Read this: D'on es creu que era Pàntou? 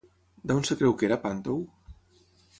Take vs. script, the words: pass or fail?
pass